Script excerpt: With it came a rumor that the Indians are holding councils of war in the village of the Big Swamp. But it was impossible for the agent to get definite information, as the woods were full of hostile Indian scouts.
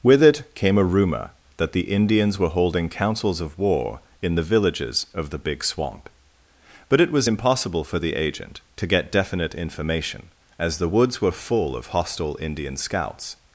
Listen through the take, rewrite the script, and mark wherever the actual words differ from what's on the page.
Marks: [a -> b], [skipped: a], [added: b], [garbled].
With it came a rumor that the Indians [are -> were] holding councils of war in the [village -> villages] of the Big Swamp. But it was impossible for the agent to get definite information, as the woods were full of hostile Indian scouts.